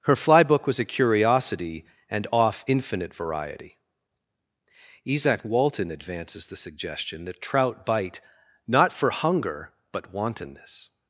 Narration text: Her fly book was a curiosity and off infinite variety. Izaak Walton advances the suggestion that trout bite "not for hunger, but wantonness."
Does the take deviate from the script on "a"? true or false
false